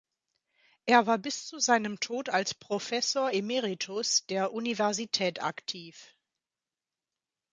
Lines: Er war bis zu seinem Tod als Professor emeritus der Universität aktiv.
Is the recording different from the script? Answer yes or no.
no